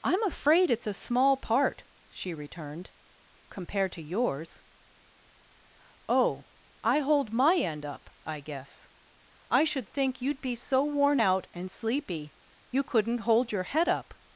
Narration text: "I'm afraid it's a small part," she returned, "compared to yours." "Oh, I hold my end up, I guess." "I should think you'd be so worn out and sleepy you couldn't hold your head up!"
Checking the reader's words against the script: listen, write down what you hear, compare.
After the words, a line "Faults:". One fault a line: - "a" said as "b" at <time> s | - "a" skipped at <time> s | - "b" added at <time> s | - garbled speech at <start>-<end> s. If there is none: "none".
"I'm afraid it's a small part," she returned, "compared to yours." "Oh, I hold my end up, I guess." "I should think you'd be so worn out and sleepy you couldn't hold your head up!"
Faults:
none